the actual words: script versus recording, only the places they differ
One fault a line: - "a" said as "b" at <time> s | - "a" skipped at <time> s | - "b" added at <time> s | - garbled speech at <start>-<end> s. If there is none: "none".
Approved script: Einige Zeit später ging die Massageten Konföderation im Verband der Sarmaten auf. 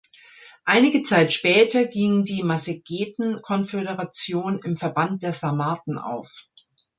none